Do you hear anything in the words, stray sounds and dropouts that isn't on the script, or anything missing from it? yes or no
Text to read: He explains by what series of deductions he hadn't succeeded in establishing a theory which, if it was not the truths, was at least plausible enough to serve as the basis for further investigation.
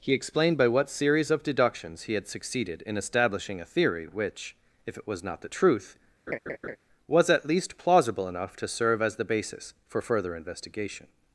yes